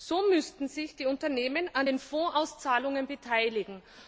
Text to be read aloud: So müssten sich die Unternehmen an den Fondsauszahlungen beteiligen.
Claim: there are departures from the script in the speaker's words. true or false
false